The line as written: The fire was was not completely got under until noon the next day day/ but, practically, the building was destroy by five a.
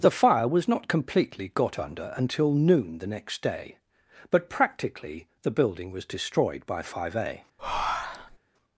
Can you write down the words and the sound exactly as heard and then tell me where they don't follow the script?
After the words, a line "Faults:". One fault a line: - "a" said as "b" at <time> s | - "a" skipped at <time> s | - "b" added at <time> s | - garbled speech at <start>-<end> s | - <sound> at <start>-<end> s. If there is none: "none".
The fire was not completely got under until noon the next day/ but, practically, the building was destroyed by five a.
Faults:
- "was" skipped at 0.7 s
- "day" skipped at 3.8 s
- "destroy" said as "destroyed" at 6.0 s
- breath at 7.6-8.4 s